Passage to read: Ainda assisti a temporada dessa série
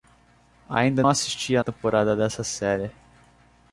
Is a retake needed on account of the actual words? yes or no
no